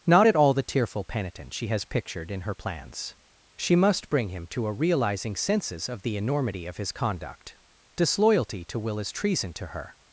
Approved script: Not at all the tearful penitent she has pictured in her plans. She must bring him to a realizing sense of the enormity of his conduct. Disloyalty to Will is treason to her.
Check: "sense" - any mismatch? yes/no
yes